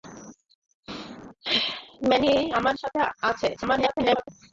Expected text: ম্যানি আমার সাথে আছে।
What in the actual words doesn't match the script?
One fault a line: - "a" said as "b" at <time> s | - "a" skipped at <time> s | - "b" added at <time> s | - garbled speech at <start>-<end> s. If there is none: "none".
- garbled speech at 3.6-4.3 s